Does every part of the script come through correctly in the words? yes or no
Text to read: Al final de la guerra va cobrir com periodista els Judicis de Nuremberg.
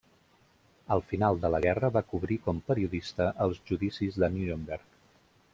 yes